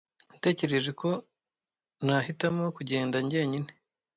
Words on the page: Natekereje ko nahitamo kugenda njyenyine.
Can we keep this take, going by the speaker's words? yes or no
yes